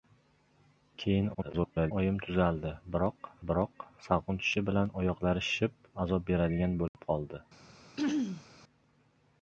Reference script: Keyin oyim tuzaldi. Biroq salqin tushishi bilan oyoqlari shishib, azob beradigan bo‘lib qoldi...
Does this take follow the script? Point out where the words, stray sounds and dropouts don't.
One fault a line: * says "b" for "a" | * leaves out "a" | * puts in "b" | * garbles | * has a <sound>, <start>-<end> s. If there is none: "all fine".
* garbles
* puts in "biroq"
* has a dropout, 6.9-6.9 s
* has a throat clearing, 8.0-8.5 s